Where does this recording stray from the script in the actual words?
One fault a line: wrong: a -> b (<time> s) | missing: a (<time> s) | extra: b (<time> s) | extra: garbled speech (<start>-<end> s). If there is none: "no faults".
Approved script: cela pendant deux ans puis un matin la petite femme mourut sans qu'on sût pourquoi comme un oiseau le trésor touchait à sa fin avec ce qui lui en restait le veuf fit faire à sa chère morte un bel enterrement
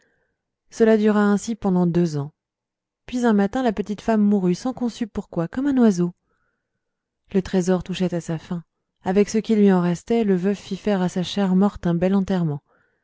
extra: dura ainsi (1.0 s)